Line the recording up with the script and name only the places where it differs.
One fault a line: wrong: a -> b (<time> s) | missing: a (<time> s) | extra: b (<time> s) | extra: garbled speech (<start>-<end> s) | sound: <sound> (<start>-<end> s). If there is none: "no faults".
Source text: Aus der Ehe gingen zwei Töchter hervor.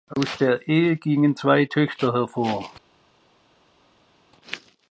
no faults